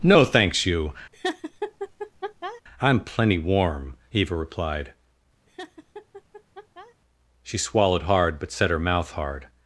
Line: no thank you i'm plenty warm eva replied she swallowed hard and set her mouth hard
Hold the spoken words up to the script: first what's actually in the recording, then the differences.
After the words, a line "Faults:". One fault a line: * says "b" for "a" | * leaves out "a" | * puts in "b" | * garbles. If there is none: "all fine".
no thanks you i'm plenty warm eva replied she swallowed hard but set her mouth hard
Faults:
* says "thanks" for "thank"
* says "but" for "and"